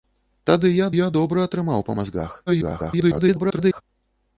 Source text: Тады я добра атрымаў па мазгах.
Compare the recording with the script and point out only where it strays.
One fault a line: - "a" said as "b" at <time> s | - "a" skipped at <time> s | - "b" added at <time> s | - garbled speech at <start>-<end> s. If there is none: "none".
- "я" added at 0.9 s
- garbled speech at 2.5-3.8 s